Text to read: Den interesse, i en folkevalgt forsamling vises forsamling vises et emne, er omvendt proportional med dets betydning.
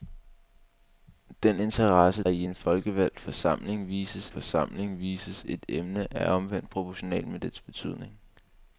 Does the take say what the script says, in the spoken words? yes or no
yes